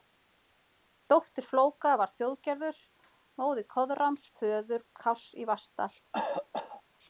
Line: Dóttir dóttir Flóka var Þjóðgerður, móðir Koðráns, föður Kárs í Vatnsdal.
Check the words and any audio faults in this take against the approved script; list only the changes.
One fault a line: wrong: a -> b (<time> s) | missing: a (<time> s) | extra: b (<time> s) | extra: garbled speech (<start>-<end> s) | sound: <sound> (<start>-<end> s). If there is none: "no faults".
missing: dóttir (1.4 s)
sound: cough (6.1-6.8 s)